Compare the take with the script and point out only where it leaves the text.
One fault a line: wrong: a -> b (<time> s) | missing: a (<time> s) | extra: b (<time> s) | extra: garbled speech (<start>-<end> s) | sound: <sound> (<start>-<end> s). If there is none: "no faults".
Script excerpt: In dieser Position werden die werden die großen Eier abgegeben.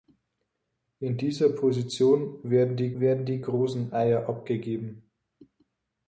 no faults